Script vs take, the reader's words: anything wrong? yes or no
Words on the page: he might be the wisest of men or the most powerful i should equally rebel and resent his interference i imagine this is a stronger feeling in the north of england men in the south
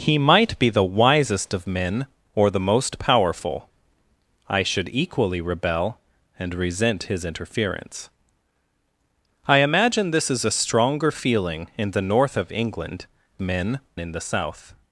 no